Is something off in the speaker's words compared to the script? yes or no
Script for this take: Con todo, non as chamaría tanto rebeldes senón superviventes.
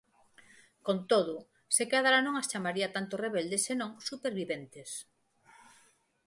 yes